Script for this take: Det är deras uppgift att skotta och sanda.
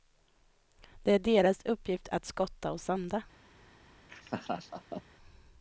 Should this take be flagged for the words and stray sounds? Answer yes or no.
yes